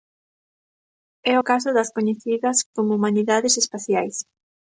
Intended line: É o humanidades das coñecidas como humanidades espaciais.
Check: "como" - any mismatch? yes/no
no